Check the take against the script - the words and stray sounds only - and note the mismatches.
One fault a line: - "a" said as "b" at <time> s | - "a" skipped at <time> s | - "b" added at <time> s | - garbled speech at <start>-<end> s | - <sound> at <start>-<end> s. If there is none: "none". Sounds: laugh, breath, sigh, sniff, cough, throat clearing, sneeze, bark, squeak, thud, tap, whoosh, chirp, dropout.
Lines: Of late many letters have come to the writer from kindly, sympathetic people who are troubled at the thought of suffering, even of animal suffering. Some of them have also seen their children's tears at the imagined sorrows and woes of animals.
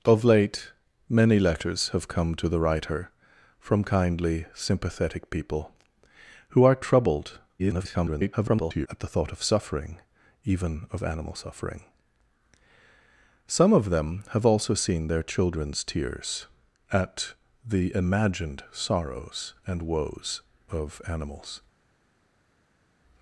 - garbled speech at 7.6-8.9 s